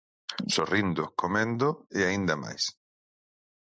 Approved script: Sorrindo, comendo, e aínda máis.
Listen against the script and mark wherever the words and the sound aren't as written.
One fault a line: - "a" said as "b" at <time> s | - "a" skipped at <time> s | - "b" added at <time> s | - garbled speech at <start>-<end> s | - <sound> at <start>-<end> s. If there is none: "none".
none